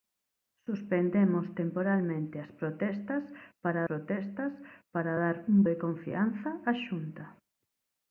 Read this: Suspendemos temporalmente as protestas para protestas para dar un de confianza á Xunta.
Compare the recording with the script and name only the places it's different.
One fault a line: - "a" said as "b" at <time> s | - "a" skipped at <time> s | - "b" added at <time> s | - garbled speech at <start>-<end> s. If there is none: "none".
none